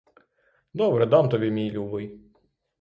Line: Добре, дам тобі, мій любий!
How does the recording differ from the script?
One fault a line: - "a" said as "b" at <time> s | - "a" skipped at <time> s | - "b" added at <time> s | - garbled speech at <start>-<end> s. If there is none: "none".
none